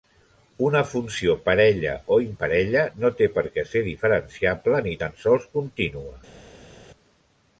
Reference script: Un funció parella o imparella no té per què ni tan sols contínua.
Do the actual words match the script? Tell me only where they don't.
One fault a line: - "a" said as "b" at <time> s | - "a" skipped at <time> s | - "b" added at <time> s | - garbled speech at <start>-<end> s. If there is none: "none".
- "Un" said as "Una" at 0.7 s
- "ser diferenciable" added at 3.8 s